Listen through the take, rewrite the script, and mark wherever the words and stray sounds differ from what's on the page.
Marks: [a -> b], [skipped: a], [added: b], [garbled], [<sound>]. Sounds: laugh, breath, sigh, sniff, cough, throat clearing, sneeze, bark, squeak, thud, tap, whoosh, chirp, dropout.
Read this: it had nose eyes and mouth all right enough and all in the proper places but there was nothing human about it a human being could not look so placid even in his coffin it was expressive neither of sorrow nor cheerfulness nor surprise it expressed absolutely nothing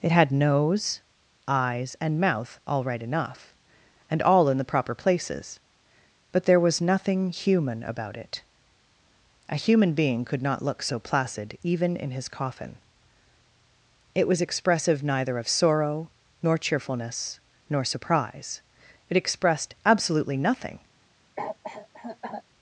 it had nose eyes and mouth all right enough and all in the proper places but there was nothing human about it a human being could not look so placid even in his coffin it was expressive neither of sorrow nor cheerfulness nor surprise it expressed absolutely nothing [cough]